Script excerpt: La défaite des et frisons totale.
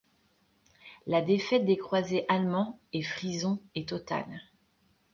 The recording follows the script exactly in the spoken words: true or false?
false